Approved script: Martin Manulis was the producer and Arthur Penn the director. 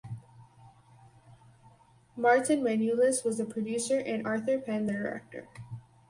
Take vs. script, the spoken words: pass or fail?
pass